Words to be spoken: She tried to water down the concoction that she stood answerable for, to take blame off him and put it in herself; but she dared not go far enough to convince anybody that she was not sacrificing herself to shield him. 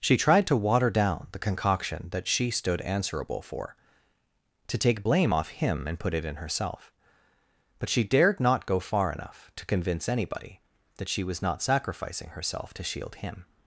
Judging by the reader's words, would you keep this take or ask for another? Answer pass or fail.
pass